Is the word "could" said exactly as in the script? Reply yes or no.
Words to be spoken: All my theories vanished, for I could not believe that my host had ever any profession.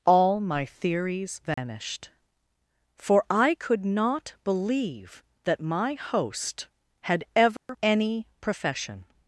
yes